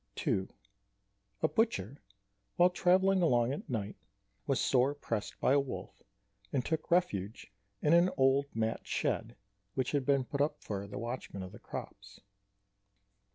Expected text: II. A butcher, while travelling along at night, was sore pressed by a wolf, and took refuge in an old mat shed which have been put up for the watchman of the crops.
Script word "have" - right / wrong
wrong